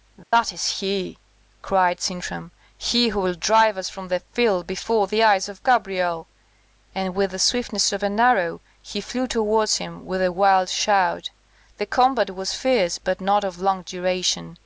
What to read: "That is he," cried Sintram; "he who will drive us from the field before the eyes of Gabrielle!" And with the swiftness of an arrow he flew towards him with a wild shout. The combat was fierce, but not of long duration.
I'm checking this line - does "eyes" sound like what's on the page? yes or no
yes